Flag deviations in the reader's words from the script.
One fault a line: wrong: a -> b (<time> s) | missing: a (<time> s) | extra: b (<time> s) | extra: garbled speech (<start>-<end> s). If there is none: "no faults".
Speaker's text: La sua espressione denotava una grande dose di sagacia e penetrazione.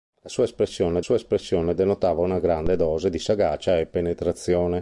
extra: sua espressione (1.0 s)